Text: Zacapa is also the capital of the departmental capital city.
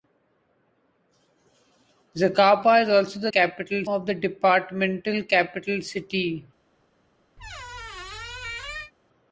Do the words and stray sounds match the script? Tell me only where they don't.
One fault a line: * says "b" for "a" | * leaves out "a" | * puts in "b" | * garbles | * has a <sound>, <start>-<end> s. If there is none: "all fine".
* has a squeak, 7.4-8.9 s